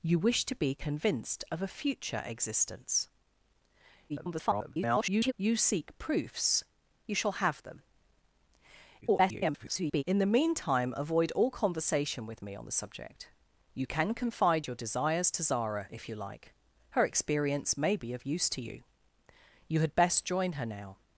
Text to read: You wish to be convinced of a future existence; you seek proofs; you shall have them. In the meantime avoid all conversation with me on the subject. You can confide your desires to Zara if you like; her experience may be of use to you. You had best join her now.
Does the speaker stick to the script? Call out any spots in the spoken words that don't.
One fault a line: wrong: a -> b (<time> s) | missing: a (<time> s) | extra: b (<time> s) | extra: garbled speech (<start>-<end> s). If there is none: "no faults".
extra: garbled speech (4.1-5.3 s)
extra: garbled speech (9.0-10.0 s)